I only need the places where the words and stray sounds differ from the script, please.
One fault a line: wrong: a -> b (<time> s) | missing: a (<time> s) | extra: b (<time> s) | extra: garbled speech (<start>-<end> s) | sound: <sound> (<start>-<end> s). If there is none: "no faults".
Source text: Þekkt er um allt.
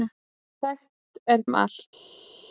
no faults